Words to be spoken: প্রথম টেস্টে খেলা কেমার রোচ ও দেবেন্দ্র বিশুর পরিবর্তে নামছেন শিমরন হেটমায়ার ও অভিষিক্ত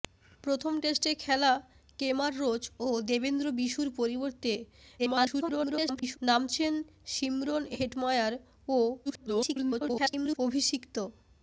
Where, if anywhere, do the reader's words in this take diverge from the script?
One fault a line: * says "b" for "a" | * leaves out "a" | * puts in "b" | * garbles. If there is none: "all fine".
* garbles
* garbles